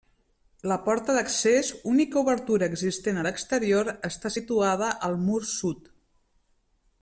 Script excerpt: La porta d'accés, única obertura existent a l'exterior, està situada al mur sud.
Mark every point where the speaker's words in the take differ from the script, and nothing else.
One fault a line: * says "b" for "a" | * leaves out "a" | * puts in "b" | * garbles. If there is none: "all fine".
all fine